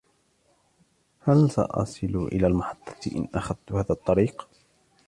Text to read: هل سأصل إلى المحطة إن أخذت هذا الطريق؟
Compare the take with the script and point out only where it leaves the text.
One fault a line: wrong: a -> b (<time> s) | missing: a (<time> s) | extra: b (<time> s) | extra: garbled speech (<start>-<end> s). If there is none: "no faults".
no faults